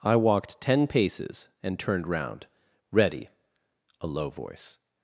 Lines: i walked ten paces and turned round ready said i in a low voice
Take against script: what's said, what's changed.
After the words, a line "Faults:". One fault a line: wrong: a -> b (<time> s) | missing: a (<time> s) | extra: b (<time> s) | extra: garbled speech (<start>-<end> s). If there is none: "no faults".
i walked ten paces and turned round ready a low voice
Faults:
missing: said i in (3.3 s)